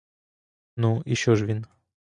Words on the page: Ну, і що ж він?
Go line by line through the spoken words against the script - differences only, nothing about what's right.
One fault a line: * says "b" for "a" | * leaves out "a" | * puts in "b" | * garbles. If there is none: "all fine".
all fine